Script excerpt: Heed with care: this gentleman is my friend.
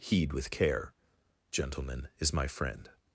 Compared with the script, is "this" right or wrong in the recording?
wrong